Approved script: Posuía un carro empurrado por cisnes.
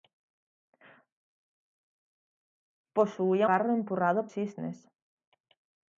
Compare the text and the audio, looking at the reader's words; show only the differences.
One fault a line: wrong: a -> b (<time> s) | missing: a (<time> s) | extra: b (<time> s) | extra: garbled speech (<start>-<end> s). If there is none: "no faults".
missing: un (3.5 s)
missing: por (4.3 s)